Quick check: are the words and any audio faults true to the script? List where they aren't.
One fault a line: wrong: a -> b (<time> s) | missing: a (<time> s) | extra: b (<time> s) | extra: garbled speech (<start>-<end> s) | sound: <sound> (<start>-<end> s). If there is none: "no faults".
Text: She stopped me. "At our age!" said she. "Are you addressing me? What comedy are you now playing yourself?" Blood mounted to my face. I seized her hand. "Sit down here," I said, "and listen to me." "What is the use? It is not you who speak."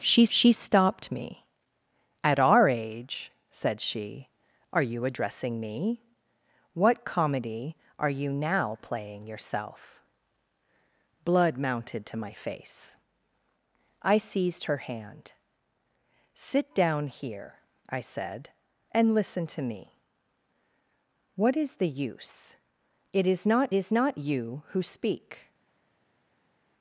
extra: she (0.3 s)
extra: is not (23.7 s)